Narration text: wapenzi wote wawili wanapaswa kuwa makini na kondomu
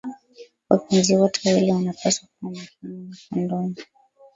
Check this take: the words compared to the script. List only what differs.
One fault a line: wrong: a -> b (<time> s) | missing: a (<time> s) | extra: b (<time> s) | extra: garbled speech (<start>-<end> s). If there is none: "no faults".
no faults